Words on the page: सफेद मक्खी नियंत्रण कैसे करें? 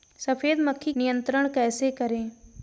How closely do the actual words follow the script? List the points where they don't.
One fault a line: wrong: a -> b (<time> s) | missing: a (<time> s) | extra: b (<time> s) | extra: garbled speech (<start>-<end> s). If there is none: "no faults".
no faults